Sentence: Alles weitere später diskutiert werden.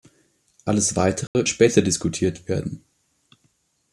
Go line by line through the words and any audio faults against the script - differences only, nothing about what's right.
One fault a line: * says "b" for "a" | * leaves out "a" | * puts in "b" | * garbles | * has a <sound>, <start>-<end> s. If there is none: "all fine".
* has a dropout, 1.3-1.3 s